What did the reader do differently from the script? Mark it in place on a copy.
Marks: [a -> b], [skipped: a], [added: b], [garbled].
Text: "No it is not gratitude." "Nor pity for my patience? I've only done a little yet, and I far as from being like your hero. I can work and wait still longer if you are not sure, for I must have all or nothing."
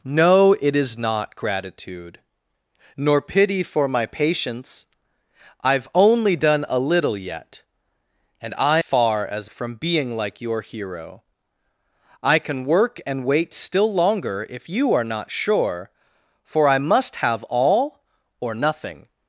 "No it is not gratitude." "Nor pity for my patience? I've only done a little yet, and I far as from being like your hero. I can work and wait still longer if you are not sure, for I must have all or nothing."